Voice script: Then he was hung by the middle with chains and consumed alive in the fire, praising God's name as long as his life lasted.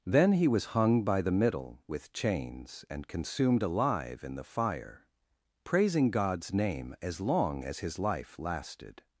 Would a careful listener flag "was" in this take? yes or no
no